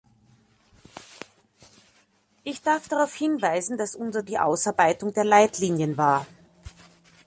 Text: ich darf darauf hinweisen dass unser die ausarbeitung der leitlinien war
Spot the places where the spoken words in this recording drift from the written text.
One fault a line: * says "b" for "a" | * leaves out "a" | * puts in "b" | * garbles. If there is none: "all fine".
all fine